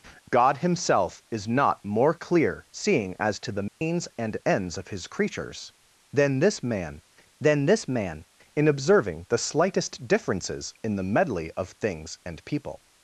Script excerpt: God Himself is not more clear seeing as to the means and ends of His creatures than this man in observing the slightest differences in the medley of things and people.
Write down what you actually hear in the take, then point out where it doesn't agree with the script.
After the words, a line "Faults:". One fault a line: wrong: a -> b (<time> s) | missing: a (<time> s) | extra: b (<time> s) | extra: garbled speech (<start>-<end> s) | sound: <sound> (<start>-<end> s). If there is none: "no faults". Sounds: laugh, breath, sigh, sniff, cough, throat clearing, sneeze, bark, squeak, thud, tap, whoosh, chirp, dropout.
God Himself is not more clear seeing as to the means and ends of His creatures than this man than this man in observing the slightest differences in the medley of things and people.
Faults:
sound: dropout (3.7-3.8 s)
extra: than this man (7.4 s)